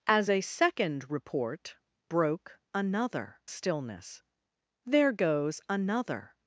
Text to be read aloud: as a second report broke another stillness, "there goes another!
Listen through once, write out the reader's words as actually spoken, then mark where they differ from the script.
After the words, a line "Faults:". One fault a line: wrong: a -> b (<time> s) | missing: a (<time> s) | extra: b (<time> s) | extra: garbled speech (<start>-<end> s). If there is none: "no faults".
as a second report broke another stillness, "there goes another!
Faults:
no faults